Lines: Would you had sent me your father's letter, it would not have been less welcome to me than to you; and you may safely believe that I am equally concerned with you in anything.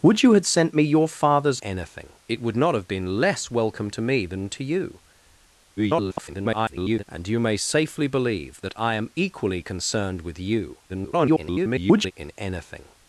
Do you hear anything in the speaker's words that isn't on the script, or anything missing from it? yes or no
yes